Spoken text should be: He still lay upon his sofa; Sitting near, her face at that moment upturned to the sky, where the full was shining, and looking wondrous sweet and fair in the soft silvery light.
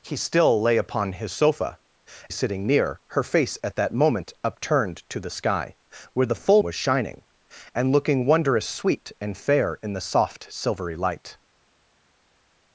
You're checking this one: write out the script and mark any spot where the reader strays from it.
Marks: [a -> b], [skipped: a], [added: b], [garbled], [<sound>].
He still lay upon his sofa; Sitting near, her face at that moment upturned to the sky, where the full was shining, and looking wondrous sweet and fair in the soft silvery light.